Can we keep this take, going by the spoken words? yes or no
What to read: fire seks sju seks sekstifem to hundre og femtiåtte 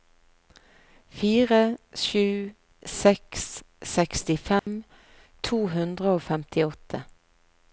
no